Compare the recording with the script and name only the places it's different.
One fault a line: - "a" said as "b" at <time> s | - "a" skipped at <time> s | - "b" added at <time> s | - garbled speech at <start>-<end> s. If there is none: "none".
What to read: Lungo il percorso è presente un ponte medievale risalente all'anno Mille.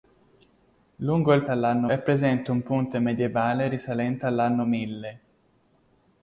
- "percorso" said as "all'anno" at 1.5 s